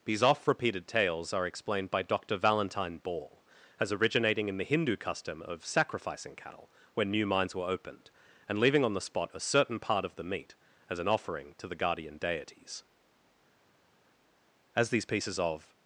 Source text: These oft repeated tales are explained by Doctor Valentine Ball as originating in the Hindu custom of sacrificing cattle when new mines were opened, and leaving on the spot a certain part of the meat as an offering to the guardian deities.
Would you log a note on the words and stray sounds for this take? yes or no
yes